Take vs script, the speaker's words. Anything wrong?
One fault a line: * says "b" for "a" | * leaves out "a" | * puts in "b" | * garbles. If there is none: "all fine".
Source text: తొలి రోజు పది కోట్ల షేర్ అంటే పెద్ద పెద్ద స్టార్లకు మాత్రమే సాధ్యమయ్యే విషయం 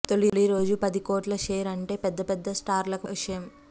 * leaves out "మాత్రమే సాధ్యమయ్యే"